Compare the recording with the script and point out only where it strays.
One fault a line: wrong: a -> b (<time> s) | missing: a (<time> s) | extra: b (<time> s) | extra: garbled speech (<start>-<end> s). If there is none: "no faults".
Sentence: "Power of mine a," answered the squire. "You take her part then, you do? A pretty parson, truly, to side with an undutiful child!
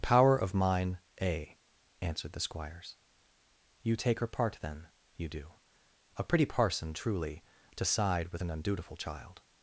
wrong: squire -> squires (2.4 s)